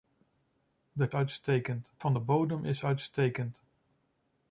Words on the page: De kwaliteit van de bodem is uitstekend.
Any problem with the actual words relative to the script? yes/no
yes